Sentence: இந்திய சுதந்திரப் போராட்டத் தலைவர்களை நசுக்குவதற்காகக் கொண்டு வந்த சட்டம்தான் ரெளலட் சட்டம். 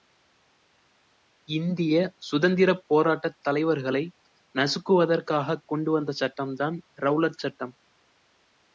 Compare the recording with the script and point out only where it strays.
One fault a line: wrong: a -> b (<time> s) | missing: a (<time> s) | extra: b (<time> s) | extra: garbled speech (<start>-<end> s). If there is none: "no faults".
no faults